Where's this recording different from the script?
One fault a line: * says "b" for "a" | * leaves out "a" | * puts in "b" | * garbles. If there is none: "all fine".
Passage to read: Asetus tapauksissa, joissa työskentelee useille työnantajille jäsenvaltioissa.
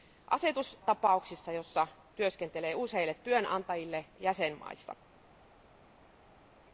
all fine